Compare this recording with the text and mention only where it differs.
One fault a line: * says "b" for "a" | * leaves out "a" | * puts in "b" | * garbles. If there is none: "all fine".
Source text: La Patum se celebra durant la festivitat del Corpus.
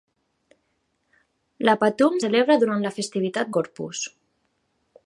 * leaves out "se"
* leaves out "del"